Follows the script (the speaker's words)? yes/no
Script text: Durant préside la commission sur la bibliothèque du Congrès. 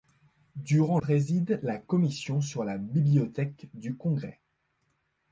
yes